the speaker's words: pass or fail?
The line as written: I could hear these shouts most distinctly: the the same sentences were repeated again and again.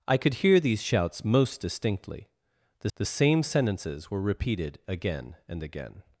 pass